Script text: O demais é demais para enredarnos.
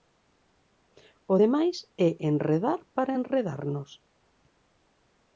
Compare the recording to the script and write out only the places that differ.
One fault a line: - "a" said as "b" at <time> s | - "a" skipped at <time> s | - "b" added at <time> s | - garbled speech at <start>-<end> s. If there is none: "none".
- "demais" said as "enredar" at 2.3 s